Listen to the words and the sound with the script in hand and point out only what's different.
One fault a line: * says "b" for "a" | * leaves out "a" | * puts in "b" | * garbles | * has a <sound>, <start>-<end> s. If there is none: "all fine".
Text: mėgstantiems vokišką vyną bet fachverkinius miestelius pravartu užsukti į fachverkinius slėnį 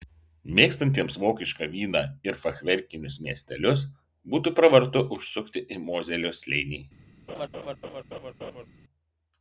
* says "ir" for "bet"
* puts in "būtų"
* says "mozelio" for "fachverkinius"
* has a laugh, 7.3-8.7 s